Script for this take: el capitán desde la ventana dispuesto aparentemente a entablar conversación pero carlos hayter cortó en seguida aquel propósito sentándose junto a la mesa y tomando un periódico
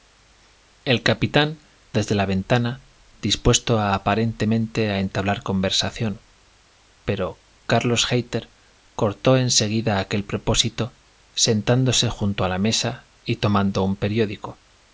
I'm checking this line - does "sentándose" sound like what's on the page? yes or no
yes